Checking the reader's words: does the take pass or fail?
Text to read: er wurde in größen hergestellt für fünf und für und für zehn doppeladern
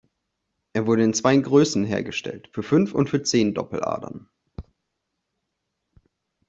fail